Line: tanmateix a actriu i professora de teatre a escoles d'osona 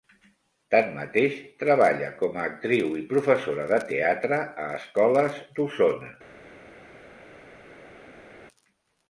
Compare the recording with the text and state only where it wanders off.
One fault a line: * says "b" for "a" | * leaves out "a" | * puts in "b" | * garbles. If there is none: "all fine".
* puts in "treballa com"